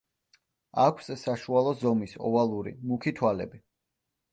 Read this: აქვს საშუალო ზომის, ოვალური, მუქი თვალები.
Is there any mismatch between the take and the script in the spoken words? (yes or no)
no